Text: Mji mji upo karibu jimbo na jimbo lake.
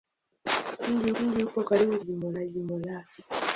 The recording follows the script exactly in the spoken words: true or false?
true